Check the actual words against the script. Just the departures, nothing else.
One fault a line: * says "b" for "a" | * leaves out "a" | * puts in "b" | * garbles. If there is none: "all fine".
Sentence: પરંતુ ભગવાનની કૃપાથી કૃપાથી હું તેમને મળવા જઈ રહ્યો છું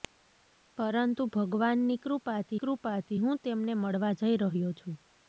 all fine